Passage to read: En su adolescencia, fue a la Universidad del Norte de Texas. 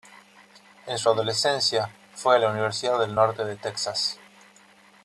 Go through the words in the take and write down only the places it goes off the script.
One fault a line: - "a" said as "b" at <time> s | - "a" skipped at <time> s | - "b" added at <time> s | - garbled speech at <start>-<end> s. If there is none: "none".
none